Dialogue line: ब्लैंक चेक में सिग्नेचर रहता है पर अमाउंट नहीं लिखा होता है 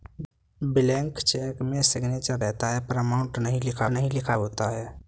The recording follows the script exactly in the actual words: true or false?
false